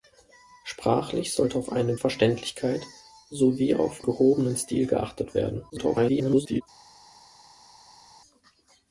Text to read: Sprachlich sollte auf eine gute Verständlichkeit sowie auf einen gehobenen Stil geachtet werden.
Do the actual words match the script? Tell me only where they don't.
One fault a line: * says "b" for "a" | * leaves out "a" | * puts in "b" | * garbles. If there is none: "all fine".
* leaves out "gute"
* leaves out "einen"
* garbles